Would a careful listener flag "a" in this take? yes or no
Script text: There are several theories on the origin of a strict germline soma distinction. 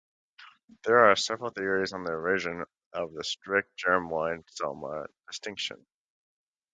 yes